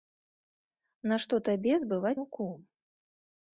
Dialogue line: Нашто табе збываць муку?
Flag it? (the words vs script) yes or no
no